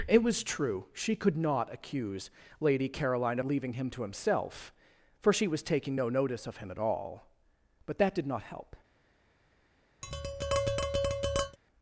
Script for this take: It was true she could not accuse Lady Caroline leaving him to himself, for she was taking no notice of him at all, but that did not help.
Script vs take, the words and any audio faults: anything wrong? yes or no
yes